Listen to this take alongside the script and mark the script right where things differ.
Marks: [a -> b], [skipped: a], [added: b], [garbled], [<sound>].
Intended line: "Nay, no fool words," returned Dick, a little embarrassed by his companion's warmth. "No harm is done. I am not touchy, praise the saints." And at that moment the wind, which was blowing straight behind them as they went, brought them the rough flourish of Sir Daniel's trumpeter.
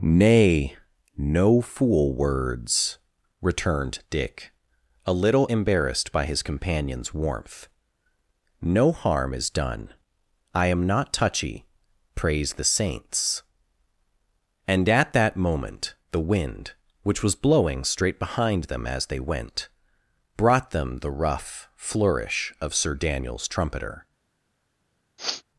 "Nay, no fool words," returned Dick, a little embarrassed by his companion's warmth. "No harm is done. I am not touchy, praise the saints." And at that moment the wind, which was blowing straight behind them as they went, brought them the rough flourish of Sir Daniel's trumpeter. [sniff]